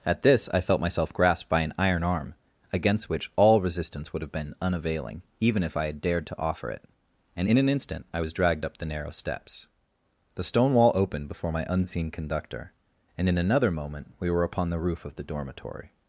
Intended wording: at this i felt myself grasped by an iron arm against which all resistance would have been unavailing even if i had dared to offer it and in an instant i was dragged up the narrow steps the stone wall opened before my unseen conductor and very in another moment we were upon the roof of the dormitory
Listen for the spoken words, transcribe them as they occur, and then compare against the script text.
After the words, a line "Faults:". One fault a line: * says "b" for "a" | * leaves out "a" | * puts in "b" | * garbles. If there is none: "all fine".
at this i felt myself grasped by an iron arm against which all resistance would have been unavailing even if i had dared to offer it and in an instant i was dragged up the narrow steps the stone wall opened before my unseen conductor and in another moment we were upon the roof of the dormitory
Faults:
* leaves out "very"